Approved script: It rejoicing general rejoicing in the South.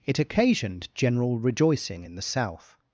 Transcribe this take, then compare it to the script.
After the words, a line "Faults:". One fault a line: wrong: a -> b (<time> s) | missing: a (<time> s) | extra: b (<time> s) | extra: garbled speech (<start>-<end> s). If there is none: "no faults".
It occasioned general rejoicing in the South.
Faults:
wrong: rejoicing -> occasioned (0.2 s)